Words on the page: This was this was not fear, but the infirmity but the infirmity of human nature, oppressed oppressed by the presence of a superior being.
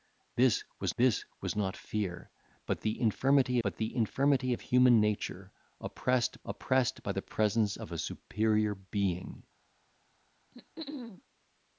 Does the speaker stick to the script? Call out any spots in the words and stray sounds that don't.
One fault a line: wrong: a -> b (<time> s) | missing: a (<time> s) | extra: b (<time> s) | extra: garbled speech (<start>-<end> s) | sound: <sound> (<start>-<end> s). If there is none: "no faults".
sound: throat clearing (10.5-11.2 s)